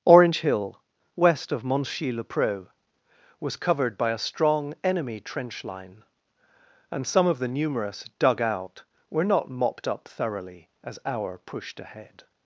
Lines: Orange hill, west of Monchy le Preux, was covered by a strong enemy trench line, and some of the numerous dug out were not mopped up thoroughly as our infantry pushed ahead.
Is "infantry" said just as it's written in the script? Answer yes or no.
no